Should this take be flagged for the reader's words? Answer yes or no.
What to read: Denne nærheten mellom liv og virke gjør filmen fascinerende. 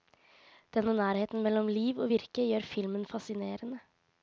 no